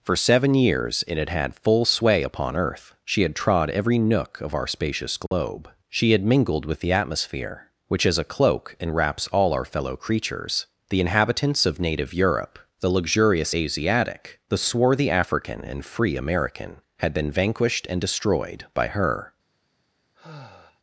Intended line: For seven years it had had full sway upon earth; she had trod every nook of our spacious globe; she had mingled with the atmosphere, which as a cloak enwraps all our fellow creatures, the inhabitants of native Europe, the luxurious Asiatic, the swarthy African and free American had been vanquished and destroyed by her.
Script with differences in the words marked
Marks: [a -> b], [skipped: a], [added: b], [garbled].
For seven years it had had full sway upon earth; she had trod every nook of our spacious globe; she had mingled with the atmosphere, which as a cloak enwraps all our fellow creatures, the inhabitants of native Europe, the luxurious Asiatic, the swarthy African and free American had been vanquished and destroyed by her.